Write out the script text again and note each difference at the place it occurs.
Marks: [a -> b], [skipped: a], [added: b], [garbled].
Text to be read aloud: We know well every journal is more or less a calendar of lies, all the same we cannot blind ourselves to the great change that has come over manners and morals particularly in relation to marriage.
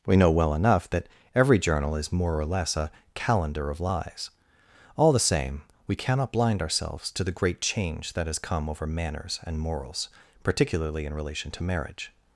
We know well [added: enough that] every journal is more or less a calendar of lies, all the same we cannot blind ourselves to the great change that has come over manners and morals particularly in relation to marriage.